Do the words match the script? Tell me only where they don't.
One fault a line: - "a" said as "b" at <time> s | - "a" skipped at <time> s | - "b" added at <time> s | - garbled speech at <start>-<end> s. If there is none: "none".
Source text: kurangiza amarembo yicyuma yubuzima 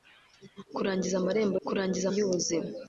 - "yicyuma" said as "kurangiza" at 1.7 s